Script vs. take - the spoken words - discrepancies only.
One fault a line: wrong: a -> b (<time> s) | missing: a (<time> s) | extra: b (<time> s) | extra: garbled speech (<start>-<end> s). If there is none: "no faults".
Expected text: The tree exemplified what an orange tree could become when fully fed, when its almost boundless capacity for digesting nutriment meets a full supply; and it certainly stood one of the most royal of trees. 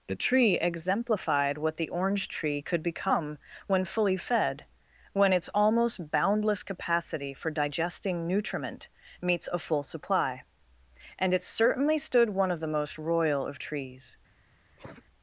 wrong: an -> the (1.8 s)